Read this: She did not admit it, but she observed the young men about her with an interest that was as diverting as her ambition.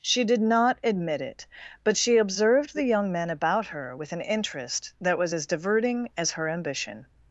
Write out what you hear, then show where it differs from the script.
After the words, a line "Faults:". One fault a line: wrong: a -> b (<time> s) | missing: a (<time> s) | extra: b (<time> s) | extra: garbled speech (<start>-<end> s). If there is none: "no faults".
She did not admit it, but she observed the young men about her with an interest that was as diverting as her ambition.
Faults:
no faults